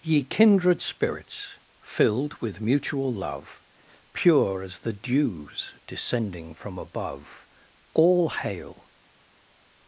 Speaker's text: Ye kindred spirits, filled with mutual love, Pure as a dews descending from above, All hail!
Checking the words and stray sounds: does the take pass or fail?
fail